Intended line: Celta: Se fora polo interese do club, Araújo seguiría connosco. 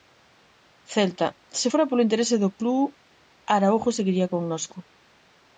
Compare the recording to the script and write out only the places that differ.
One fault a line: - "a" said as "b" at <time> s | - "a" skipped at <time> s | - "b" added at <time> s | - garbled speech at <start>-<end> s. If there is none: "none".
none